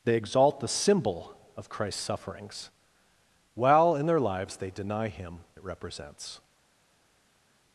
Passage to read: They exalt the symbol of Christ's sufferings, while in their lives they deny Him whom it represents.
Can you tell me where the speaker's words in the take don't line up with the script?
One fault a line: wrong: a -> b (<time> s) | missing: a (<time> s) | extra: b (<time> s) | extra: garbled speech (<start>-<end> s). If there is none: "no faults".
missing: whom (5.4 s)